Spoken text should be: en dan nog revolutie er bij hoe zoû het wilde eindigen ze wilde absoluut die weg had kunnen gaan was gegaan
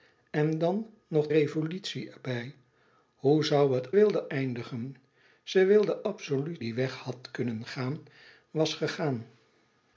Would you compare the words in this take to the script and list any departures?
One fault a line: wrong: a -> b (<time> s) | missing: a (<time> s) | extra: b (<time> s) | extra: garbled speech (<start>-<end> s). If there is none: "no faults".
no faults